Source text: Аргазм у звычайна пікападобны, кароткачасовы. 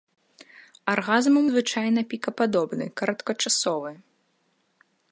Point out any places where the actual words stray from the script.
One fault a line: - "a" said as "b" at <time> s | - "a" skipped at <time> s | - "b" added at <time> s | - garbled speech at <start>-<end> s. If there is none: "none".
none